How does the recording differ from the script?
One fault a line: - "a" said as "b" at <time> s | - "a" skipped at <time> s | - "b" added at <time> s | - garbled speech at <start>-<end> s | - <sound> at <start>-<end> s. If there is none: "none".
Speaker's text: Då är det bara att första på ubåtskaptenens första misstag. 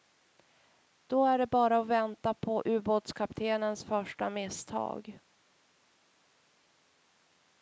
- "första" said as "vänta" at 1.9 s